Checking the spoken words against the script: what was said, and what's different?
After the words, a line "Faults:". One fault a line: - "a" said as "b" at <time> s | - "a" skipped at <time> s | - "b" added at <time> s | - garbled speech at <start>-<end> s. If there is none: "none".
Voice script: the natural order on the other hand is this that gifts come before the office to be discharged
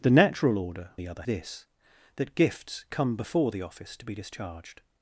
the natural order the other this that gifts come before the office to be discharged
Faults:
- "on" skipped at 0.9 s
- "hand is" skipped at 1.2 s